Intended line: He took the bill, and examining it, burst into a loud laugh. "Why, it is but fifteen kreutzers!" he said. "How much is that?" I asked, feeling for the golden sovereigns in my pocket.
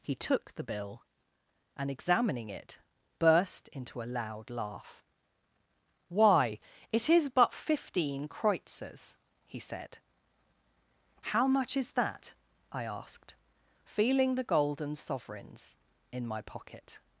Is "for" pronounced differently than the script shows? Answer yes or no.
yes